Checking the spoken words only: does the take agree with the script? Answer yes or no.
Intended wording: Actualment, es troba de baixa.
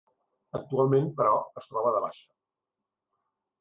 no